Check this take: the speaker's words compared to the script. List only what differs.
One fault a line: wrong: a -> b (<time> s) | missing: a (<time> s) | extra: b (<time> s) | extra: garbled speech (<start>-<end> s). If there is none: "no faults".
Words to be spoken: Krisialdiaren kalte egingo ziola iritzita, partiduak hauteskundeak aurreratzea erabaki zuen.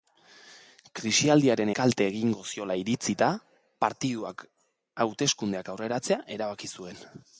no faults